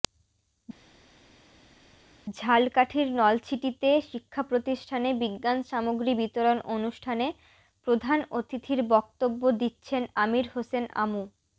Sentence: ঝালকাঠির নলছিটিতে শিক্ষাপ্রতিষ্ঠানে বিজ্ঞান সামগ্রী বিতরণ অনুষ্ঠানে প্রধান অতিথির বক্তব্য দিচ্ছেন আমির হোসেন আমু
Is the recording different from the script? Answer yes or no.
no